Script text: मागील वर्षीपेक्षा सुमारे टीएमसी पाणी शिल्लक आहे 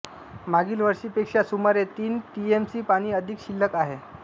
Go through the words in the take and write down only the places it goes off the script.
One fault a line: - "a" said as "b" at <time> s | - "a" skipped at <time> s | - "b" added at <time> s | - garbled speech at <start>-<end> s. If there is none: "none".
- "तीन" added at 2.0 s
- "अधिक" added at 3.1 s